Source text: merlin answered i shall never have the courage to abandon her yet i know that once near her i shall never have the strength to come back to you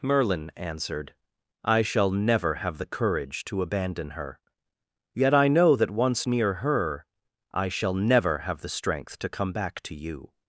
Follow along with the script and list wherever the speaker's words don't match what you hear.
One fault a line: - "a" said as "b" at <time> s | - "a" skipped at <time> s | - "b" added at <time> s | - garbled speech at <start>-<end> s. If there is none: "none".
none